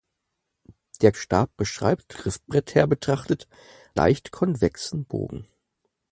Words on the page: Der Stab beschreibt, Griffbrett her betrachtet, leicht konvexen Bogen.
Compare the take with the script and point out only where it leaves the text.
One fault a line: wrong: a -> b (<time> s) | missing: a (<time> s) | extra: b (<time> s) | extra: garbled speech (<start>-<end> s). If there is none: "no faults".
no faults